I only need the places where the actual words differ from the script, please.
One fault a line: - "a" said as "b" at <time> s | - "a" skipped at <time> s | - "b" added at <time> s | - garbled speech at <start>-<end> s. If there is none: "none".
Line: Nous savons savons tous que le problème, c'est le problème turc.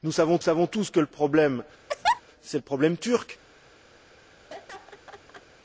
none